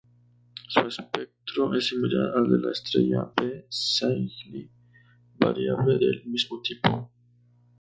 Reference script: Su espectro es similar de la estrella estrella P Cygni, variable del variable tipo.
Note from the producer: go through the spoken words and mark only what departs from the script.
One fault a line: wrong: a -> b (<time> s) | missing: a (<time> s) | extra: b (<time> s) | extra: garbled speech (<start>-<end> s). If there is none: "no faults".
extra: al (2.4 s)
missing: estrella (3.3 s)
wrong: variable -> mismo (6.3 s)